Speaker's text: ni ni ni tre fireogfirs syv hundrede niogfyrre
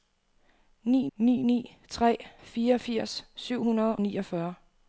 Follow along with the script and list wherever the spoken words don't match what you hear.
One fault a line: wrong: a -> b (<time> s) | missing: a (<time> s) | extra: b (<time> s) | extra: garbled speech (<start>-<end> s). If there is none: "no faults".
no faults